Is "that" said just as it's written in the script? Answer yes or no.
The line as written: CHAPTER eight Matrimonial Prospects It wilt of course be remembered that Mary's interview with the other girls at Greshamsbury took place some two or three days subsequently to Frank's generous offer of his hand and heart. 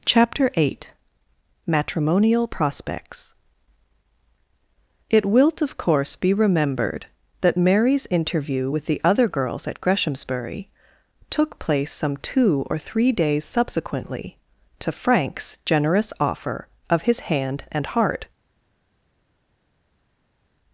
yes